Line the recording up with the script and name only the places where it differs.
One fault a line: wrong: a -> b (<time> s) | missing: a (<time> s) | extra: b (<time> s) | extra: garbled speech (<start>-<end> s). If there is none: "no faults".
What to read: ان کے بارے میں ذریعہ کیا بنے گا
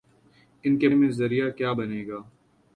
missing: بارے (0.9 s)